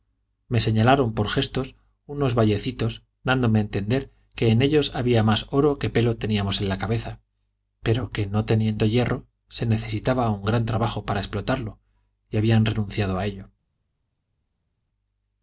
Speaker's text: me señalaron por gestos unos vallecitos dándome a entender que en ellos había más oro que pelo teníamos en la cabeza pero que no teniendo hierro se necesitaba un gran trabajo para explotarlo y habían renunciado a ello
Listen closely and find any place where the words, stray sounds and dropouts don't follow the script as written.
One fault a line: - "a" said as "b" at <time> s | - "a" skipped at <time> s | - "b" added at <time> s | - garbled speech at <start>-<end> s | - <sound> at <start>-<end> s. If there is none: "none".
none